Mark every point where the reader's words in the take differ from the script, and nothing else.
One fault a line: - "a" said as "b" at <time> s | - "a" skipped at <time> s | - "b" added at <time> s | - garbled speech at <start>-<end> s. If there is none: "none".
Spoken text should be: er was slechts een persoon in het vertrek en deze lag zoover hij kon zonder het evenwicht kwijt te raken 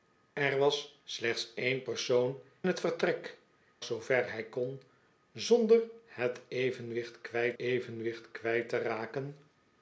- "in" skipped at 2.4 s
- "en deze lag" skipped at 3.4 s
- "evenwicht kwijt" added at 7.6 s